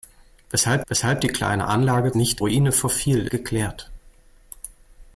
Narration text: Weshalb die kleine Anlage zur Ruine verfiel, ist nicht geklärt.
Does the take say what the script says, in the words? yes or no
no